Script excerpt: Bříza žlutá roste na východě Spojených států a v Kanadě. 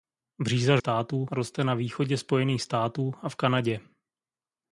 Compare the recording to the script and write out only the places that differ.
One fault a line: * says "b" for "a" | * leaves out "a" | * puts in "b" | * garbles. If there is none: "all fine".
* says "států" for "žlutá"